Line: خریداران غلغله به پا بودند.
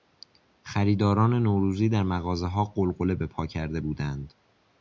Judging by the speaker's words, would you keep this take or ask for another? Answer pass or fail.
fail